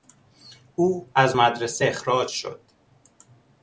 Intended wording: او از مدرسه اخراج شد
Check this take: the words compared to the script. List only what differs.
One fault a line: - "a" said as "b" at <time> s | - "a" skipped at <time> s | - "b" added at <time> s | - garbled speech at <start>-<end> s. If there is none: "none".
none